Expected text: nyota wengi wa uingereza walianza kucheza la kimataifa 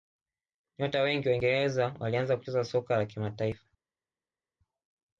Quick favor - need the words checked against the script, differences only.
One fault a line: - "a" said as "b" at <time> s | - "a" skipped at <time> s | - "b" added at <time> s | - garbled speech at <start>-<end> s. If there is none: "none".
- "soka" added at 2.6 s